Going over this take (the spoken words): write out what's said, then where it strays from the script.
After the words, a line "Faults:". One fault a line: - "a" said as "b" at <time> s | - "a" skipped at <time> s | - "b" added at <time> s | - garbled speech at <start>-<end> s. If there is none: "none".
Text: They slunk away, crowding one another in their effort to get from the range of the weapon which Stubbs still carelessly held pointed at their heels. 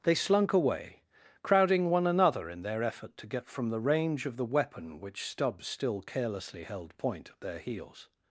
They slunk away, crowding one another in their effort to get from the range of the weapon which Stubbs still carelessly held point at their heels.
Faults:
- "pointed" said as "point" at 7.0 s